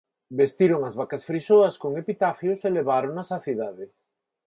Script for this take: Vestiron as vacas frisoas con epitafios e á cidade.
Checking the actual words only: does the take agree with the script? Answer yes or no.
no